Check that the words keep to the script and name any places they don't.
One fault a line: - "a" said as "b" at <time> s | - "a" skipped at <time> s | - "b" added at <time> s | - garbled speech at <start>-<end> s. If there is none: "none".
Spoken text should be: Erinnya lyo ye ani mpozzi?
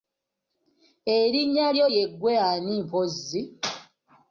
- "ggwe" added at 2.1 s